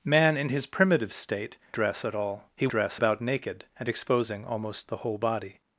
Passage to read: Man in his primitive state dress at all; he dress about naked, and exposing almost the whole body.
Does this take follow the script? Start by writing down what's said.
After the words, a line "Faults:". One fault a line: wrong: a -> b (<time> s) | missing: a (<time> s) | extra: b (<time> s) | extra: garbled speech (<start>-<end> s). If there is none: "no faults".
Man in his primitive state dress at all; he dress about naked, and exposing almost the whole body.
Faults:
no faults